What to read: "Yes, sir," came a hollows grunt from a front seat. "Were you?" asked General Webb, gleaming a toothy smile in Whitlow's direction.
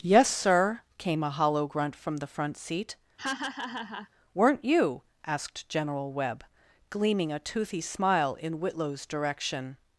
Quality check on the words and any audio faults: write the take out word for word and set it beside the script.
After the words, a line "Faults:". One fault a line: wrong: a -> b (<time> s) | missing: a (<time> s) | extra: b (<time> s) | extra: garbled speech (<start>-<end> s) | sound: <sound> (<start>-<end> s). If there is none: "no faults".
"Yes, sir," came a hollow grunt from the front seat. "Weren't you?" asked General Webb, gleaming a toothy smile in Whitlow's direction.
Faults:
wrong: hollows -> hollow (1.3 s)
wrong: a -> the (2.2 s)
sound: laugh (3.2-4.1 s)
wrong: Were -> Weren't (4.3 s)